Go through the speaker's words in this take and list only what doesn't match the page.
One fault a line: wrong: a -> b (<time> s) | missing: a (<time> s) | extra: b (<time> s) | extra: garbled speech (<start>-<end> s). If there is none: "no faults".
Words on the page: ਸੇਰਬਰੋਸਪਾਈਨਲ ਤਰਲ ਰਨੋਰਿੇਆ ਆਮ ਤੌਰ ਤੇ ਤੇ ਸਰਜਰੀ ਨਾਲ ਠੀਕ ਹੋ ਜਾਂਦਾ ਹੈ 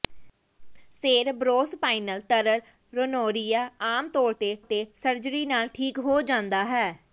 no faults